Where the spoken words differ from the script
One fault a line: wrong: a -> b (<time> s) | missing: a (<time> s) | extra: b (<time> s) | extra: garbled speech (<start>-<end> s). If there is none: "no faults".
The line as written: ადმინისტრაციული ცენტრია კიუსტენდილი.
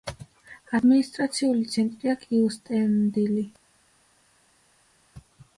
no faults